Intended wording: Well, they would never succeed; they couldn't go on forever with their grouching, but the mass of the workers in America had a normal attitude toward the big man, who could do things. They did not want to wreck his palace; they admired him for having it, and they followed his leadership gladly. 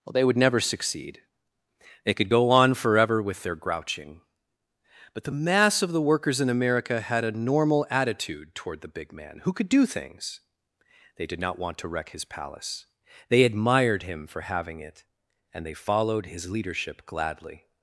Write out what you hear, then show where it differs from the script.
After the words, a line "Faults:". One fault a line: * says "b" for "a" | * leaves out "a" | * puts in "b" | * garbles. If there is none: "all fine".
Well, they would never succeed; they could go on forever with their grouching, but the mass of the workers in America had a normal attitude toward the big man, who could do things. They did not want to wreck his palace; they admired him for having it, and they followed his leadership gladly.
Faults:
* says "could" for "couldn't"